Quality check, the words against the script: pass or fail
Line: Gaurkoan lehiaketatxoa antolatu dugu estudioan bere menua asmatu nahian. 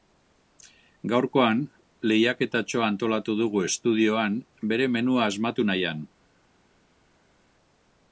pass